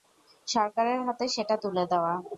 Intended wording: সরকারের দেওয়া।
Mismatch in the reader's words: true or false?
true